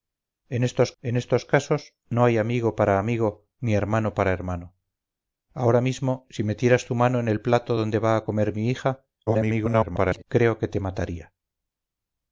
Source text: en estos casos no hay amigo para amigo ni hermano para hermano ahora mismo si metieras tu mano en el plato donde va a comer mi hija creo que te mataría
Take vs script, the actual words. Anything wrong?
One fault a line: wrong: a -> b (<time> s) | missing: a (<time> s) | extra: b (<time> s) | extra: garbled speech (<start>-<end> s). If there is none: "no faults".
extra: en estos (1.0 s)
extra: garbled speech (9.3-10.2 s)